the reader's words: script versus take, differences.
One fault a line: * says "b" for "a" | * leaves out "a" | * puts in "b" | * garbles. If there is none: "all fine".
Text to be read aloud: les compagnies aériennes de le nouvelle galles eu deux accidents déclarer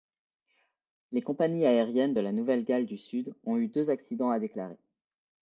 * says "la" for "le"
* puts in "du sud ont"
* puts in "à"